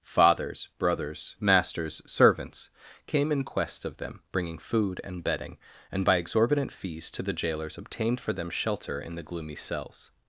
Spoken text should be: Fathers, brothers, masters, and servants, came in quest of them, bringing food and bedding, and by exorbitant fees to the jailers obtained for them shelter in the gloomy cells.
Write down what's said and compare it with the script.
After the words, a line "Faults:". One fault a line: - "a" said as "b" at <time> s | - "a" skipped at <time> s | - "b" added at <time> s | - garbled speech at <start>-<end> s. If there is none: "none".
Fathers, brothers, masters, servants, came in quest of them, bringing food and bedding, and by exorbitant fees to the jailers obtained for them shelter in the gloomy cells.
Faults:
- "and" skipped at 2.0 s